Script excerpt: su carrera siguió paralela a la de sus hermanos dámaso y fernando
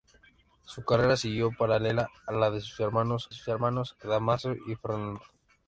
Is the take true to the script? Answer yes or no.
no